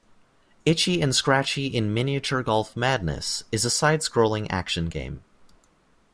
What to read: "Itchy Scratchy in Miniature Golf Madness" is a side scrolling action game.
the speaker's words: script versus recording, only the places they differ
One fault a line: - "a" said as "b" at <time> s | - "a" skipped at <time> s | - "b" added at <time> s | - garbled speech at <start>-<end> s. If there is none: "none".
- "and" added at 1.0 s